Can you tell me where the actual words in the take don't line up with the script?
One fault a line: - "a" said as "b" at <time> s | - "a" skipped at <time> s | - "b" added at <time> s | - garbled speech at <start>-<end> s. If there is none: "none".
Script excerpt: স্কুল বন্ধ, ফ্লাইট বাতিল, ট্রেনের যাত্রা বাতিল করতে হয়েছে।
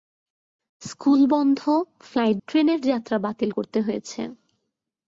- "বাতিল" skipped at 2.4 s